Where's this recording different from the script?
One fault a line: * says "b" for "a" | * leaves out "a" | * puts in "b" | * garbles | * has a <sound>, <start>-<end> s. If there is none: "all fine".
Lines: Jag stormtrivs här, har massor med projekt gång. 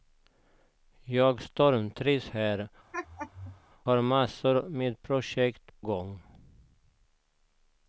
* has a laugh, 2.9-3.6 s